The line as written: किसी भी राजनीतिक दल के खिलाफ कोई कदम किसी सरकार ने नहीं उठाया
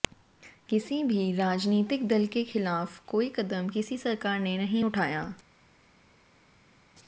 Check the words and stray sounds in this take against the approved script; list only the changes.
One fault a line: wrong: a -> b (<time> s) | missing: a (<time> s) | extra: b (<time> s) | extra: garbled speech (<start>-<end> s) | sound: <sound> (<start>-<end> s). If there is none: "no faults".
no faults